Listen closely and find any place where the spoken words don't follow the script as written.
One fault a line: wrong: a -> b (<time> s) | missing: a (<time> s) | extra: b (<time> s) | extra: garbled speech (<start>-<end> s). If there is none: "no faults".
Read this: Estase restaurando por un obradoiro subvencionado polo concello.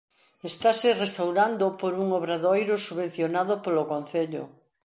no faults